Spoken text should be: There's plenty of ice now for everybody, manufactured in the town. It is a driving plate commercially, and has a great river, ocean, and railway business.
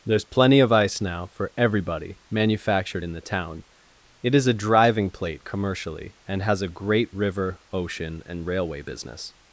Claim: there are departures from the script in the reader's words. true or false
false